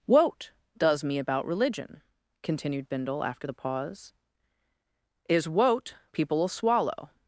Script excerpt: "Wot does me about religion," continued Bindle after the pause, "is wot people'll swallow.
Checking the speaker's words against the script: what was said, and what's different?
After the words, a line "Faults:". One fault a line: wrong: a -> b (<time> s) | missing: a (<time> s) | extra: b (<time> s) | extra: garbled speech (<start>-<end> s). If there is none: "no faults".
"Wot does me about religion," continued Bindle after the pause, "is wot people'll swallow.
Faults:
no faults